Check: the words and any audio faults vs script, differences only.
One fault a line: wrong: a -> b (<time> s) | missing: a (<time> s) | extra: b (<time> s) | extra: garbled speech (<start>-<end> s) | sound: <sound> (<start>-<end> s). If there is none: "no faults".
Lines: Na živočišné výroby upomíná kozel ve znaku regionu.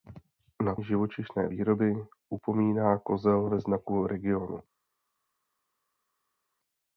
no faults